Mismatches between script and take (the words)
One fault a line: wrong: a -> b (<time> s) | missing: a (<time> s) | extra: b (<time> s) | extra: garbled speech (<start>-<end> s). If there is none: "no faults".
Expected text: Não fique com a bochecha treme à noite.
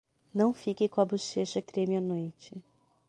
no faults